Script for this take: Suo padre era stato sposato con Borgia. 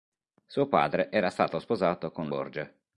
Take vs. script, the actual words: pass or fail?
pass